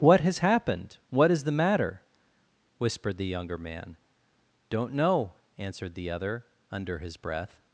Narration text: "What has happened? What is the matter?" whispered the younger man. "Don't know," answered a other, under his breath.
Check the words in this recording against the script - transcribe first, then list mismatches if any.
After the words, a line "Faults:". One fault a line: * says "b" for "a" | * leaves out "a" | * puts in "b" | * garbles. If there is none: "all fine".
"What has happened? What is the matter?" whispered the younger man. "Don't know," answered the other, under his breath.
Faults:
* says "the" for "a"